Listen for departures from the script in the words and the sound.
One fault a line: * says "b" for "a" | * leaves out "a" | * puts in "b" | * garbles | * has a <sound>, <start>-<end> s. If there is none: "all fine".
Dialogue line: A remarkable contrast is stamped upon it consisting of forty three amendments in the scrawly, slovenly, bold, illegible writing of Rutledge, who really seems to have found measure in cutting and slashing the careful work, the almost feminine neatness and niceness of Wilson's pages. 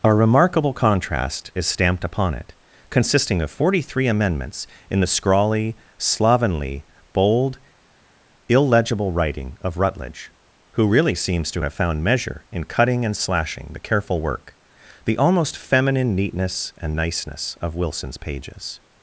all fine